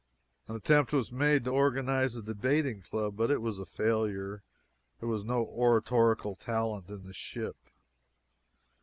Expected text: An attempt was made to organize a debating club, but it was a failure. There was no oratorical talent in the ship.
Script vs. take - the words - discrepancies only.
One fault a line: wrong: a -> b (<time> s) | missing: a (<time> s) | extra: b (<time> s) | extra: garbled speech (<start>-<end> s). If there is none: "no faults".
no faults